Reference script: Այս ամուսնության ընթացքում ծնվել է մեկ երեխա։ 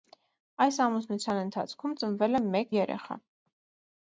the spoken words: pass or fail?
pass